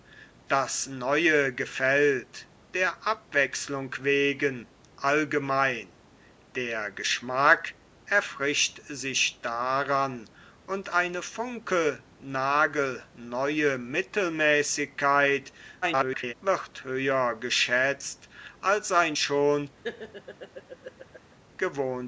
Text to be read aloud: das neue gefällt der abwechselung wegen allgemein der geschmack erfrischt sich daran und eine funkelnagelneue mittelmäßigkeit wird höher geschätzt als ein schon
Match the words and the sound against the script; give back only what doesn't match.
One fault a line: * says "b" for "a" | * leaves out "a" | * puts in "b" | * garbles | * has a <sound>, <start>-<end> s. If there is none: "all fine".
* garbles
* has a laugh, 19.8-21.4 s